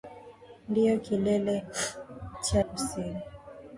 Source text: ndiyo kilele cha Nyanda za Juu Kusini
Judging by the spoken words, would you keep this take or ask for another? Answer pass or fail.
fail